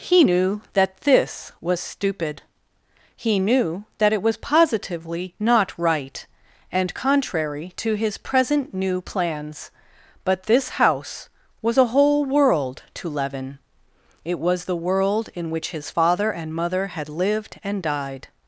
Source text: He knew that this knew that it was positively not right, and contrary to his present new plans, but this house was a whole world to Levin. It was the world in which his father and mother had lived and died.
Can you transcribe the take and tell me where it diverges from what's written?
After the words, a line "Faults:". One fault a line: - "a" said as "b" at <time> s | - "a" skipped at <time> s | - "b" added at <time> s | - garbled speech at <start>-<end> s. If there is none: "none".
He knew that this was stupid, he knew that it was positively not right, and contrary to his present new plans, but this house was a whole world to Levin. It was the world in which his father and mother had lived and died.
Faults:
- "was stupid he" added at 1.6 s